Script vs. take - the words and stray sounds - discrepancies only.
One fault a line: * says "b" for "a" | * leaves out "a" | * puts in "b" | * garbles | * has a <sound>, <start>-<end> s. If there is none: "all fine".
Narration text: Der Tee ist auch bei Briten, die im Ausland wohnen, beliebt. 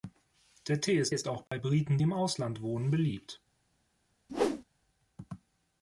* puts in "ist"
* has a dropout, 1.5-1.5 s
* leaves out "die"
* has a whoosh, 4.3-4.6 s